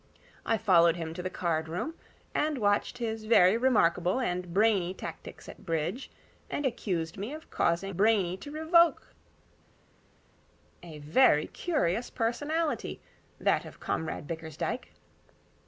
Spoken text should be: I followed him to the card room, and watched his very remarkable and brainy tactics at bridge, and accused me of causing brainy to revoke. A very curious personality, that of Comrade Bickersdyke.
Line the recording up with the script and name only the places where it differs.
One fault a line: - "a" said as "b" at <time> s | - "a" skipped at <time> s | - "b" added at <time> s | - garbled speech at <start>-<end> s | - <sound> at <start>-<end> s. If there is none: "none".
none